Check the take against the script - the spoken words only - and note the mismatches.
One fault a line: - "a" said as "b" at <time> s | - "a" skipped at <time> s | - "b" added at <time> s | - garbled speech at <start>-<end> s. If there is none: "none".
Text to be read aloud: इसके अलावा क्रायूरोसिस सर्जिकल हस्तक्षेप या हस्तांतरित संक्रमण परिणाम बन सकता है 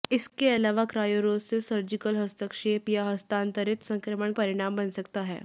none